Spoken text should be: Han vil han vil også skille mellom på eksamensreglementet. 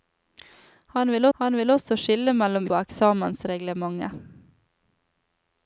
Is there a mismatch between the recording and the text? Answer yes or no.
no